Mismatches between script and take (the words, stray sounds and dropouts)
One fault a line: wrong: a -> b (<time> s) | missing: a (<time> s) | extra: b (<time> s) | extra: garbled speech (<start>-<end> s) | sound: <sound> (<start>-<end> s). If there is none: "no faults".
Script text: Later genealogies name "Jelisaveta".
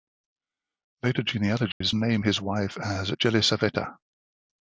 sound: dropout (1.7-1.8 s)
extra: his wife as (2.2 s)